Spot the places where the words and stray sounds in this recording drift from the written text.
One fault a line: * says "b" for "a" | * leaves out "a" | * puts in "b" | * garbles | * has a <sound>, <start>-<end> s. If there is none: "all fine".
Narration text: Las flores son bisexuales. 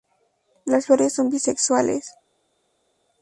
all fine